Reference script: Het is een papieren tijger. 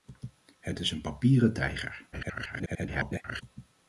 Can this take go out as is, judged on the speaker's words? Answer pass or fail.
fail